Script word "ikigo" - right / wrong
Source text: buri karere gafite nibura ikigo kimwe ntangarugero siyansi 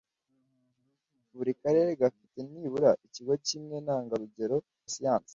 right